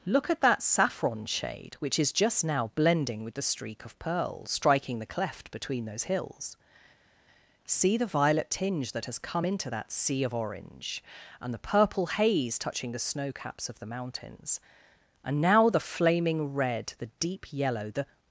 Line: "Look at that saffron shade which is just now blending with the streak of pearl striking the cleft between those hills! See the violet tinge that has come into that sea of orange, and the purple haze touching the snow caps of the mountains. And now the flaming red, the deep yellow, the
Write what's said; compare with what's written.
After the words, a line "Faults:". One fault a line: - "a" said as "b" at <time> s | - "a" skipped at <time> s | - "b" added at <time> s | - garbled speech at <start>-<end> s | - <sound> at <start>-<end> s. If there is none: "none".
"Look at that saffron shade which is just now blending with the streak of pearl striking the cleft between those hills! See the violet tinge that has come into that sea of orange, and the purple haze touching the snow caps of the mountains. And now the flaming red, the deep yellow, the
Faults:
none